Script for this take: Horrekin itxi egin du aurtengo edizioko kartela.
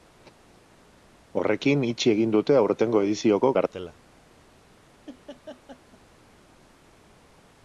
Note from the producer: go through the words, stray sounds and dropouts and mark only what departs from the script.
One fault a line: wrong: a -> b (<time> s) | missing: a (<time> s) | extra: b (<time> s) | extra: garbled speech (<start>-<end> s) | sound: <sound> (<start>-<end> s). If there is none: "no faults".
wrong: du -> dute (2.4 s)
sound: laugh (5.1-6.0 s)